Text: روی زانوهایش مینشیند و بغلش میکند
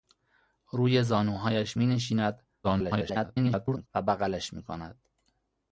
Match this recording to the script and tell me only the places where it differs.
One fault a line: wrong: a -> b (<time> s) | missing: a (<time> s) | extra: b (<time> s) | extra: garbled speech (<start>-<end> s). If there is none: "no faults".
extra: garbled speech (2.6-3.9 s)